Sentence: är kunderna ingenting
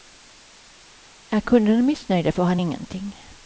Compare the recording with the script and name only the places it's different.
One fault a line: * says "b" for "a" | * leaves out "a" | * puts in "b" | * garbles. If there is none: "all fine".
* puts in "missnöjda får han"